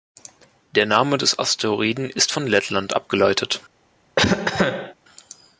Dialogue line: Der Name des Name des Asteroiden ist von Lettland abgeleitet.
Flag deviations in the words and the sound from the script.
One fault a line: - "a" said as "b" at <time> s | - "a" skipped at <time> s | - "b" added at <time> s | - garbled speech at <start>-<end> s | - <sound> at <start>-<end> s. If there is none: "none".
- "Name des" skipped at 1.4 s
- cough at 4.2-4.9 s